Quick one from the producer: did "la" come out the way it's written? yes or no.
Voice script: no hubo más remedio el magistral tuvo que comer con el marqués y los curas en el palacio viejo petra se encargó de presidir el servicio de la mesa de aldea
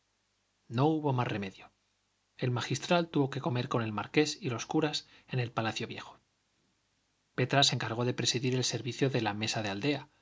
yes